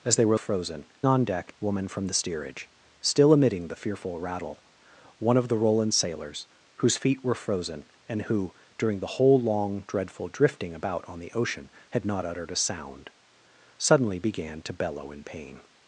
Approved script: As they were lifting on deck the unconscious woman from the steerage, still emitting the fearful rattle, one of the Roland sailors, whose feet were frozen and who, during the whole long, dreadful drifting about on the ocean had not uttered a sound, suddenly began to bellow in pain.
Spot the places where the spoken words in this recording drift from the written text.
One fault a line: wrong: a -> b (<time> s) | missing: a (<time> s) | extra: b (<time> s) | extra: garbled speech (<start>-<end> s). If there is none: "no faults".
wrong: lifting -> frozen (0.3 s)
missing: the unconscious (1.5 s)